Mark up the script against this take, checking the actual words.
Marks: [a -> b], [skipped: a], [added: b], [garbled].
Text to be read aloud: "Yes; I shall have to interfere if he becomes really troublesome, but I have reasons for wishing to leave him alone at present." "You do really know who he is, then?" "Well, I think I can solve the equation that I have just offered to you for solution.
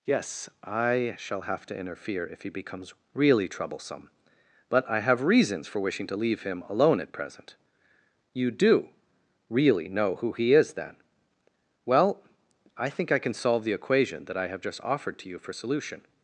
"Yes; I shall have to interfere if he becomes really troublesome, but I have reasons for wishing to leave him alone at present." "You do really know who he is, then?" "Well, I think I can solve the equation that I have just offered to you for solution.